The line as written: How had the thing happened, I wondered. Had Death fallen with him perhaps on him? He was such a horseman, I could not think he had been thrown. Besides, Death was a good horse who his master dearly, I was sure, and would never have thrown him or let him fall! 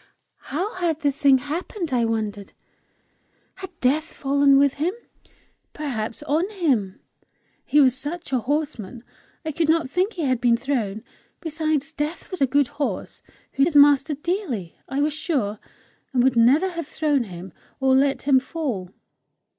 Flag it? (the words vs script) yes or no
no